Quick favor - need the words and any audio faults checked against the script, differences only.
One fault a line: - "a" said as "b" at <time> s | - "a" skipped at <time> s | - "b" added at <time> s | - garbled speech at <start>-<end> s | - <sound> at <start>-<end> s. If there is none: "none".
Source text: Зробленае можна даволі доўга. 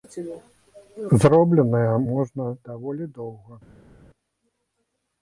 none